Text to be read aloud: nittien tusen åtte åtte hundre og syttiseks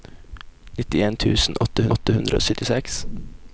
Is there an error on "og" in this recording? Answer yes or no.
no